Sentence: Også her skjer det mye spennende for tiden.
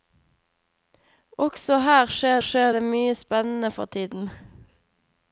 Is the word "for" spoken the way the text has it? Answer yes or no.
yes